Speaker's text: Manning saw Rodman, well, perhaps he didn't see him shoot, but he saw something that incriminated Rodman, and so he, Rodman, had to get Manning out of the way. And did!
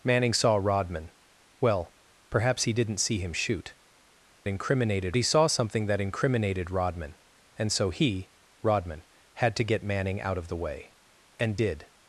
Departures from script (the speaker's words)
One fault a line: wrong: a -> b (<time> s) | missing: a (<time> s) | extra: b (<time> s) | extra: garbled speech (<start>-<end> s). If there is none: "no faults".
wrong: but -> incriminated (4.5 s)